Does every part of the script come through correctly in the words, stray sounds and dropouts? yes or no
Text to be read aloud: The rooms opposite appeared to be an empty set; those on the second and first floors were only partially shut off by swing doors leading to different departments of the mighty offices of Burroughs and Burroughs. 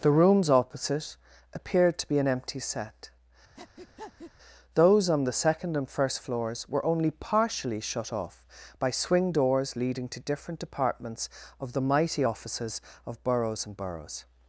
no